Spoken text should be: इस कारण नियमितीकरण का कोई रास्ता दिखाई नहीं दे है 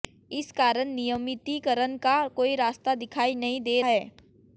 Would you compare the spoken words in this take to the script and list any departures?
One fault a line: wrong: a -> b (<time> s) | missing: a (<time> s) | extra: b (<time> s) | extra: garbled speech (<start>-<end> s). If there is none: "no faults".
no faults